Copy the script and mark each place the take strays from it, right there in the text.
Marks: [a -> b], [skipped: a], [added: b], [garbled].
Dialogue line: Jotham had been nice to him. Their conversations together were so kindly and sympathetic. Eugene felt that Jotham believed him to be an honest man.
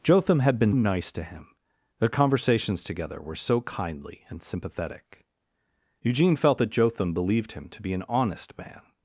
Jotham had been nice to him. Their conversations together were so kindly and sympathetic. Eugene felt that Jotham believed him to be an honest man.